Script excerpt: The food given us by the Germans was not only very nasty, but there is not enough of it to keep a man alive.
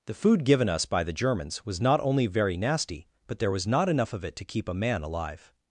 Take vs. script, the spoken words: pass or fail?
fail